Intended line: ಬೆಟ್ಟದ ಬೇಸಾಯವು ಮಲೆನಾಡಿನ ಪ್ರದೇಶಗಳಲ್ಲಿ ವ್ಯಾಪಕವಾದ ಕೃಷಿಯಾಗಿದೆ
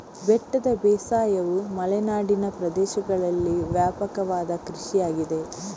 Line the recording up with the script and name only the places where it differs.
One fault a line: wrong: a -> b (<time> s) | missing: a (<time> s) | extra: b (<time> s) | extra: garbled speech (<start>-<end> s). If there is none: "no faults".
no faults